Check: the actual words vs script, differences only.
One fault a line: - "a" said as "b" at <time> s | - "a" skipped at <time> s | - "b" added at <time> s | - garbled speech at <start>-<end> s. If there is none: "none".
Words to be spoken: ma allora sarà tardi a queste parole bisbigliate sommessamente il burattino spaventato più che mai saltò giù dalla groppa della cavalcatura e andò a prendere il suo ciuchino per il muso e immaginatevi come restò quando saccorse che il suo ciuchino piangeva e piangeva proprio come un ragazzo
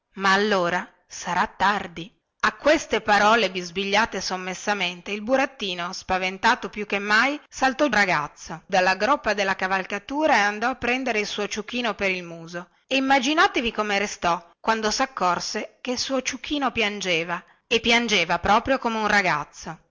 - "giù" said as "ragazzo" at 7.9 s